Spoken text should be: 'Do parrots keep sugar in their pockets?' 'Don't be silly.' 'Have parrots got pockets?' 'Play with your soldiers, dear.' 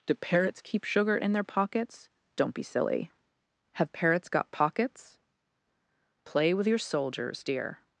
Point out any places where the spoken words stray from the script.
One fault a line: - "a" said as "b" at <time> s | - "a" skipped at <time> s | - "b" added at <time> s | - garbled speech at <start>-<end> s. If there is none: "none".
none